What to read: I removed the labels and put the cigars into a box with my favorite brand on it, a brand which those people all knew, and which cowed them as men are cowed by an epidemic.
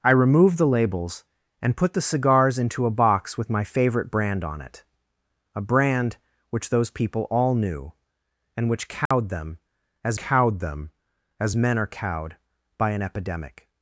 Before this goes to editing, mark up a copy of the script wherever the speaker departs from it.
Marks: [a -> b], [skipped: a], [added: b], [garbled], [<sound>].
I removed the labels and put the cigars into a box with my favorite brand on it, a brand which those people all knew, and which cowed [dropout] them as [added: cowed them as] men are cowed by an epidemic.